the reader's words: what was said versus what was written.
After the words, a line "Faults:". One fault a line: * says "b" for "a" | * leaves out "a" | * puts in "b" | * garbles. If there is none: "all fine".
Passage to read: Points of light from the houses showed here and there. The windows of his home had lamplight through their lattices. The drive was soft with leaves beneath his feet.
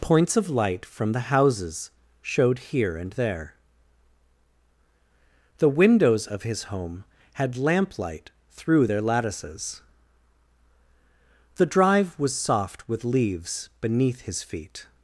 Points of light from the houses showed here and there. The windows of his home had lamplight through their lattices. The drive was soft with leaves beneath his feet.
Faults:
all fine